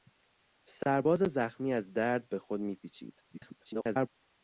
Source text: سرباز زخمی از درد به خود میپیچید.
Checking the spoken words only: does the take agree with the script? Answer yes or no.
no